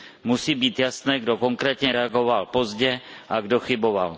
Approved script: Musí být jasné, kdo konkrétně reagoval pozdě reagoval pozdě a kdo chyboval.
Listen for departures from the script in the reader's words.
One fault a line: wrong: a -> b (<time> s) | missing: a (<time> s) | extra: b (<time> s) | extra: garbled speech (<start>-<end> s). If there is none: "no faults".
missing: reagoval pozdě (3.0 s)